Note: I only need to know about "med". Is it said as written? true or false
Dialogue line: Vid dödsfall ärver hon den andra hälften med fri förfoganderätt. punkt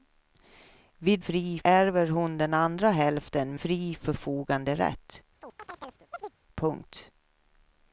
false